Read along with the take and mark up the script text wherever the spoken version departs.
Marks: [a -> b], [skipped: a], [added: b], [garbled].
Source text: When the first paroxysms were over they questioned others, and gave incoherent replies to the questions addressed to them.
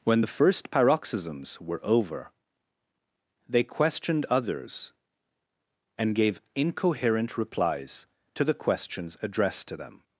When the first paroxysms were over they questioned others, and gave incoherent replies to the questions addressed to them.